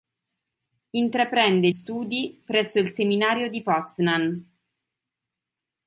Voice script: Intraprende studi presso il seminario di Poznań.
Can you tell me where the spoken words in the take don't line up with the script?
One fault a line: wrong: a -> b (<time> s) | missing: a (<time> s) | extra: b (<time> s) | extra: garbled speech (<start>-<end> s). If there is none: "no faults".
no faults